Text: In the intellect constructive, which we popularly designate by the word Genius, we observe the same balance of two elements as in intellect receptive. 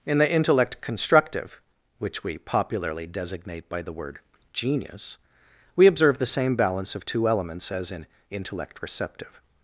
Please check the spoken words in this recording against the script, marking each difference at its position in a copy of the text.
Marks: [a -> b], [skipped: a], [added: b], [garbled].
In the intellect constructive, which we popularly designate by the word Genius, we observe the same balance of two elements as in intellect receptive.